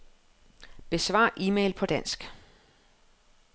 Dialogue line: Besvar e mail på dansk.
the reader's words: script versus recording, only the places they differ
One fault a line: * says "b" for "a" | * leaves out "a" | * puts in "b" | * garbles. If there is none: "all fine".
all fine